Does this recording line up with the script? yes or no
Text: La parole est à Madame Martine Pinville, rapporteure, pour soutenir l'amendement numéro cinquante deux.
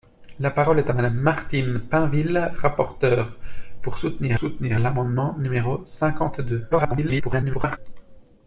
no